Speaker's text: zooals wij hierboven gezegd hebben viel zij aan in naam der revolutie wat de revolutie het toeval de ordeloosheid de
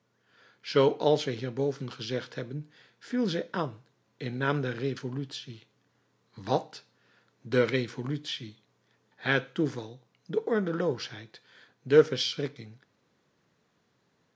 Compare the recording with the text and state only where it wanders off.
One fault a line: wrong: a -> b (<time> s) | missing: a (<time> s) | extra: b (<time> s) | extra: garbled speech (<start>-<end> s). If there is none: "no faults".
no faults